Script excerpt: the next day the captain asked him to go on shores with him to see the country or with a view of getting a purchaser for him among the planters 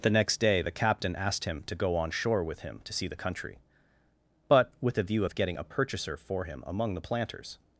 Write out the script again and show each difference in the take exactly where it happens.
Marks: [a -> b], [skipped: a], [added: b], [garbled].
the next day the captain asked him to go on [shores -> shore] with him to see the country [or -> but] with a view of getting a purchaser for him among the planters